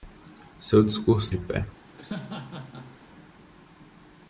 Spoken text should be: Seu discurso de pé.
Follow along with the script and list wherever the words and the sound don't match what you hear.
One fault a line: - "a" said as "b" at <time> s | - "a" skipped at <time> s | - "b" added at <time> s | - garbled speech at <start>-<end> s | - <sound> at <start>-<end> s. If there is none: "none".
- laugh at 2.0-3.0 s